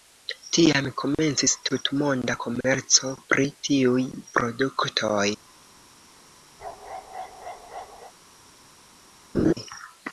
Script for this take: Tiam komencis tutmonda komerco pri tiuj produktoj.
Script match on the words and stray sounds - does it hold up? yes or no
no